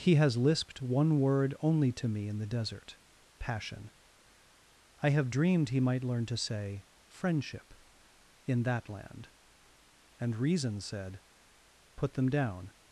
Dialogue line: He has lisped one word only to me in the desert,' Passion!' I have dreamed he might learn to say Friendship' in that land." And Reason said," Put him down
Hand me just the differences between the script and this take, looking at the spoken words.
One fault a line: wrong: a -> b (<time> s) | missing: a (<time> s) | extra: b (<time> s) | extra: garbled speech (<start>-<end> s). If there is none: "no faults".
wrong: him -> them (12.1 s)